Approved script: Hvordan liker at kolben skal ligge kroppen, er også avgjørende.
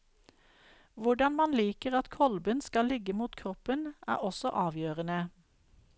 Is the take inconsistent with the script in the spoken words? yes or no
yes